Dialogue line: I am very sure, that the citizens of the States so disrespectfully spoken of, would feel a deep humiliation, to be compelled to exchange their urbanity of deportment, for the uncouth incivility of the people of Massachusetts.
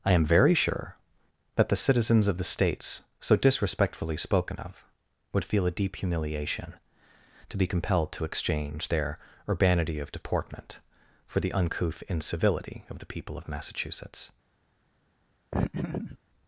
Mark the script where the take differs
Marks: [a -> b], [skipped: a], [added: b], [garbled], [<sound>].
I am very sure, that the citizens of the States so disrespectfully spoken of, would feel a deep humiliation, to be compelled to exchange their urbanity of deportment, for the uncouth incivility of the people of Massachusetts. [laugh]